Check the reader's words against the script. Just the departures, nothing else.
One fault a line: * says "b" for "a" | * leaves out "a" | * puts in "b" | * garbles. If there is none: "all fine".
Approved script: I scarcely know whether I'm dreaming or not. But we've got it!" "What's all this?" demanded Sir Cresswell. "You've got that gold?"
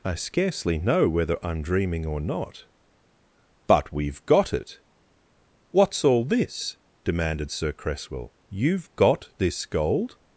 * says "this" for "that"